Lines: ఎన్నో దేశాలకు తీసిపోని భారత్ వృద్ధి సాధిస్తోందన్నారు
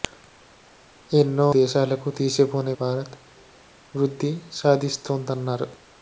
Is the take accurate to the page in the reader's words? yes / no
yes